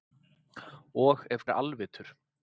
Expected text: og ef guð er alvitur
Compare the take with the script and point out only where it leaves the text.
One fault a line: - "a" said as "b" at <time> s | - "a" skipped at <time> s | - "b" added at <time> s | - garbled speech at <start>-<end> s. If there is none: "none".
- "guð" skipped at 1.5 s